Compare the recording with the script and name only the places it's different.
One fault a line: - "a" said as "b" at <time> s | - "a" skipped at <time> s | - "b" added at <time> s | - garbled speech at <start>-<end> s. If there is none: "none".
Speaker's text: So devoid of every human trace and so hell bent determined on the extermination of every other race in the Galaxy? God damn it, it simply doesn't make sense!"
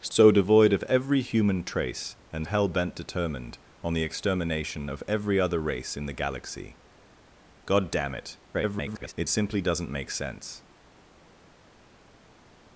- "so" skipped at 2.5 s
- garbled speech at 8.5-9.1 s